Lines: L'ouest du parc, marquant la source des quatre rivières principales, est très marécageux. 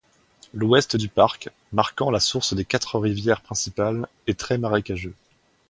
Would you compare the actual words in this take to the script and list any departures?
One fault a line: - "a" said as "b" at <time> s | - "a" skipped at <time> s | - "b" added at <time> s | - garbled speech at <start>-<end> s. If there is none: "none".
none